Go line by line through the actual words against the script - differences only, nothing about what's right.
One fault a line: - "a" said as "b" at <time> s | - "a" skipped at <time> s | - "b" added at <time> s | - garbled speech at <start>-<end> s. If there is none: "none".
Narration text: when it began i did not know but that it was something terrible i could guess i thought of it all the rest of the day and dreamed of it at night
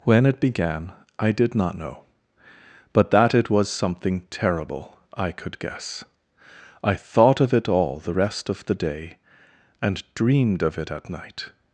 none